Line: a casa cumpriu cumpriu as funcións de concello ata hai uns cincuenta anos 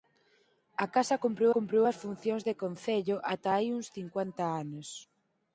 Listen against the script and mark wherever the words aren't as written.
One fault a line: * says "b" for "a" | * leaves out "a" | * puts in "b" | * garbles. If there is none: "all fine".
all fine